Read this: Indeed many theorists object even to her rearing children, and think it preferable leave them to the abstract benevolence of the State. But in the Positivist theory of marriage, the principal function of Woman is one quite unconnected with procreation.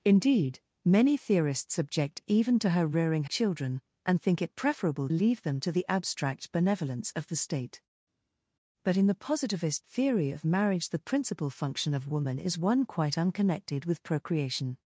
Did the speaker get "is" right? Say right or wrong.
right